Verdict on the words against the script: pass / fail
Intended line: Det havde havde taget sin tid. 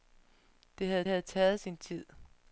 pass